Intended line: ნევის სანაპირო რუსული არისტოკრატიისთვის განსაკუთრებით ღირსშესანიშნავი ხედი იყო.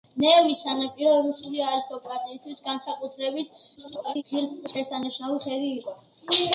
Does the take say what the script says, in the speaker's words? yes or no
no